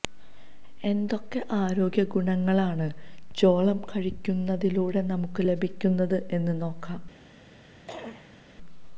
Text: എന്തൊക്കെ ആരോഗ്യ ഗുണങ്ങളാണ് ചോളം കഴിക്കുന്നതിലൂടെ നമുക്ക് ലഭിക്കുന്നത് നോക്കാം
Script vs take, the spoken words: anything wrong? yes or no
yes